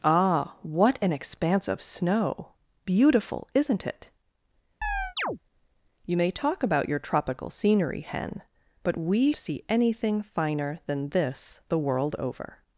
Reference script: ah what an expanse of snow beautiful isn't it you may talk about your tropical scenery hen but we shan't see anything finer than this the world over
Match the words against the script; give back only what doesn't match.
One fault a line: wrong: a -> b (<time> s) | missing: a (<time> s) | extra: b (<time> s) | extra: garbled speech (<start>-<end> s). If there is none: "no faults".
missing: shan't (9.3 s)